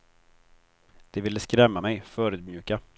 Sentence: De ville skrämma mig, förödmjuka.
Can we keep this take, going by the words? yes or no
yes